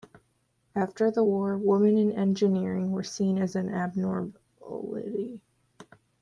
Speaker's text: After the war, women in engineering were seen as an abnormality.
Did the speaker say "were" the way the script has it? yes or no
yes